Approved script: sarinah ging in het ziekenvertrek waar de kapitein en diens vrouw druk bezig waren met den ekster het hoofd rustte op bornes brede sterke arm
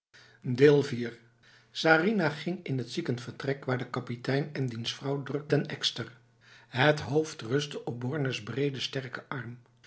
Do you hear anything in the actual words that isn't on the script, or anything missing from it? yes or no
yes